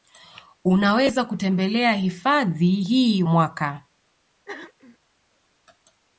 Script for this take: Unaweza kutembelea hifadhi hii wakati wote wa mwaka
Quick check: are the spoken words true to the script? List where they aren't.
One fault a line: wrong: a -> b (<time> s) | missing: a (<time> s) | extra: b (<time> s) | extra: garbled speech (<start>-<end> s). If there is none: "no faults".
missing: wakati wote wa (3.2 s)